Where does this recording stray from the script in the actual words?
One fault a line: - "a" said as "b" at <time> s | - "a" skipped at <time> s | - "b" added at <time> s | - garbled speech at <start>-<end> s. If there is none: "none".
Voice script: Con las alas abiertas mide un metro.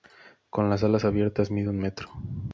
none